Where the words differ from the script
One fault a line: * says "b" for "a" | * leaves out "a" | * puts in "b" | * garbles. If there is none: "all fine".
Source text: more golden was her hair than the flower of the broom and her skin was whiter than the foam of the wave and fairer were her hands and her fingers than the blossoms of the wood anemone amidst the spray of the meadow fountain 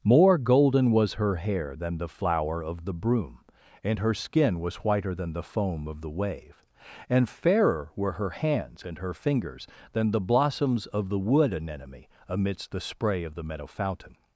all fine